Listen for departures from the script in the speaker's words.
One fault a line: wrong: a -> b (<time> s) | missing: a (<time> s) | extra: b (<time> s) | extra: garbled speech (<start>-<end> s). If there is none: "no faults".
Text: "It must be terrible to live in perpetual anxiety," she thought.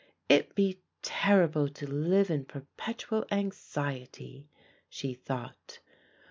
missing: must (0.6 s)